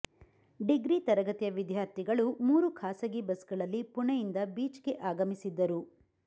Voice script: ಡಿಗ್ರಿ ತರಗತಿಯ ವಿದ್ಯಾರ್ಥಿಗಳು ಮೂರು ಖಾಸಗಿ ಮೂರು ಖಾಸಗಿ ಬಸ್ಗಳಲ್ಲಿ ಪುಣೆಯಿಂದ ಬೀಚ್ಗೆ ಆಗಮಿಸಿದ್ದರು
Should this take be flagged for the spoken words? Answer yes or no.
yes